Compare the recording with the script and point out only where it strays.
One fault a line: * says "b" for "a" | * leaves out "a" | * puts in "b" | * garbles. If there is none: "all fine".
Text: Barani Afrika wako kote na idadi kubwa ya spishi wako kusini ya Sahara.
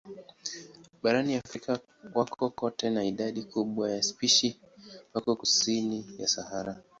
all fine